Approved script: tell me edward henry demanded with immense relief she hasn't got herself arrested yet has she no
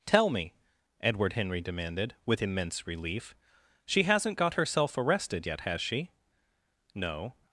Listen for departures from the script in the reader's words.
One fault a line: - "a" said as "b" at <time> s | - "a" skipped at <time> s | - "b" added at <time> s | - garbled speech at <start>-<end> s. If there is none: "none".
none